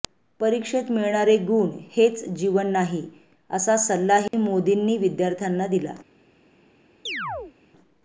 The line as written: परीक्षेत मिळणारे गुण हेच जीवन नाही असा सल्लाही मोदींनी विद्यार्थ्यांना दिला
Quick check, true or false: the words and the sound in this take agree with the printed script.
false